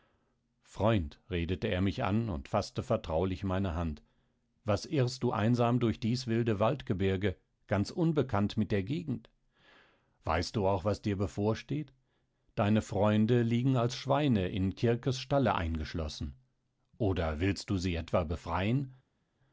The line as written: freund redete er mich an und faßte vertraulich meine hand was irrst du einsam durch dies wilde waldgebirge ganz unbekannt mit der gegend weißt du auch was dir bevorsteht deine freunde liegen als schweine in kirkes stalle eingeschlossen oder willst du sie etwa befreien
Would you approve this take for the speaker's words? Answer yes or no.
yes